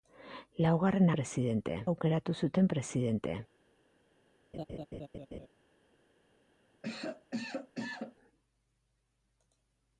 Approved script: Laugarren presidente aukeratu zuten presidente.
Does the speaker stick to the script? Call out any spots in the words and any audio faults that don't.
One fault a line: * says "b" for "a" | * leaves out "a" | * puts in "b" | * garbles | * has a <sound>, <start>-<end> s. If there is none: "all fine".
* has a laugh, 4.5-5.5 s
* has a cough, 6.8-8.2 s